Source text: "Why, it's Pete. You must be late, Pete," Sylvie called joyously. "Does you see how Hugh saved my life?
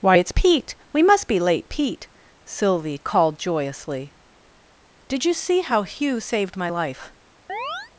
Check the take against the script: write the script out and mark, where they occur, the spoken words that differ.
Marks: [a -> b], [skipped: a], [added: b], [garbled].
"Why, it's Pete. [You -> We] must be late, Pete," Sylvie called joyously. ["Does -> Did] you see how Hugh saved my life?